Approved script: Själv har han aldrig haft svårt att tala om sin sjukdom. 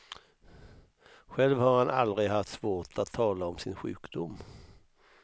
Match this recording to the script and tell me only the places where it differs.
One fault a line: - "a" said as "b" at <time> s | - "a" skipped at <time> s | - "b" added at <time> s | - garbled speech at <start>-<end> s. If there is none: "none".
none